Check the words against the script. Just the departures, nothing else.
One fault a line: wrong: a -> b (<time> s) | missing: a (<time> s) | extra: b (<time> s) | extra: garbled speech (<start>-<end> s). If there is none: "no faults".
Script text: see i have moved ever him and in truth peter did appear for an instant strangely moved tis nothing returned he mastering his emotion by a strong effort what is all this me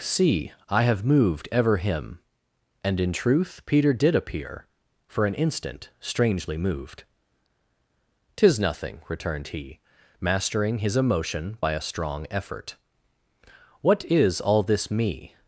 no faults